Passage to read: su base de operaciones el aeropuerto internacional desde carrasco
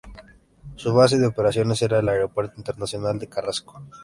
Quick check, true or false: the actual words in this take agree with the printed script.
false